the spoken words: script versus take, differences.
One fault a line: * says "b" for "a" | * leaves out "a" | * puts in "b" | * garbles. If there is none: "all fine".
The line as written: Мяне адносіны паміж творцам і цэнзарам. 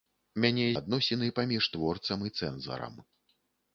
all fine